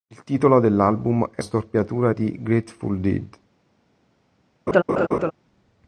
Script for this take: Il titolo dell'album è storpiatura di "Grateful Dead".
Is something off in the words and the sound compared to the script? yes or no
yes